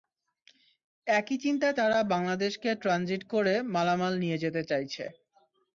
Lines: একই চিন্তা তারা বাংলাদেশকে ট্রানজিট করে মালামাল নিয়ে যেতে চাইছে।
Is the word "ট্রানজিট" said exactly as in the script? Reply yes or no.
yes